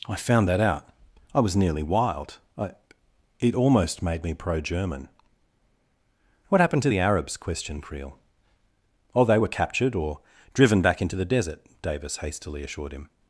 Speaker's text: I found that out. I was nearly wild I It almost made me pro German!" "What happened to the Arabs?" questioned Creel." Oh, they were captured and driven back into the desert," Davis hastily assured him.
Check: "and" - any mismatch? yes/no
yes